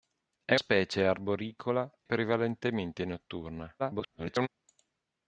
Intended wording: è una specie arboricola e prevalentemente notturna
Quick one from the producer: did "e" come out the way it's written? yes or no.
no